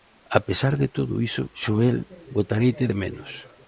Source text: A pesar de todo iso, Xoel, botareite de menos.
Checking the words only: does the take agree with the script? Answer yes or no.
yes